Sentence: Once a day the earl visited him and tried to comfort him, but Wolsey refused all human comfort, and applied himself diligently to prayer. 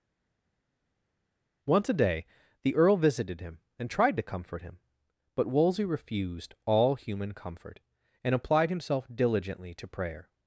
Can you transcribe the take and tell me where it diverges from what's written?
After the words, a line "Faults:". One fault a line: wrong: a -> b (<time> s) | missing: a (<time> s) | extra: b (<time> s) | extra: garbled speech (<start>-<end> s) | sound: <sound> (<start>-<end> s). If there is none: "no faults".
Once a day the earl visited him and tried to comfort him, but Wolsey refused all human comfort, and applied himself diligently to prayer.
Faults:
no faults